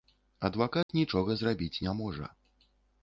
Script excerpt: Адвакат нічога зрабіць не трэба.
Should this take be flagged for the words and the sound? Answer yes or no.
yes